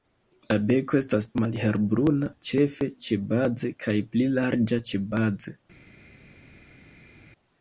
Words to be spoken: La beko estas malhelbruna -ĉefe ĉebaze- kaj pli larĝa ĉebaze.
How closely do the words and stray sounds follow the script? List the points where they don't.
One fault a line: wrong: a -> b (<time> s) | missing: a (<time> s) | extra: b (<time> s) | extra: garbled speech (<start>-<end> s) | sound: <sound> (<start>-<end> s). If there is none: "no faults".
no faults